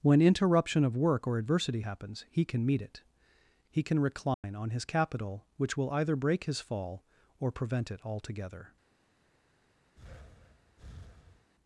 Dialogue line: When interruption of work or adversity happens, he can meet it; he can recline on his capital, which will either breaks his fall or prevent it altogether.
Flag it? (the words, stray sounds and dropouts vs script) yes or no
yes